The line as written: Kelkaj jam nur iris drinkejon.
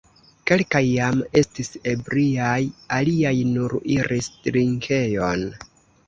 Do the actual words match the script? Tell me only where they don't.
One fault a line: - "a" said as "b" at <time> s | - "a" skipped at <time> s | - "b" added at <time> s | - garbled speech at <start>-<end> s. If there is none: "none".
- "estis ebriaj aliaj" added at 1.4 s